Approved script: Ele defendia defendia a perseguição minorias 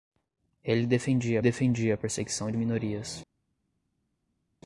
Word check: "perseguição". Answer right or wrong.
right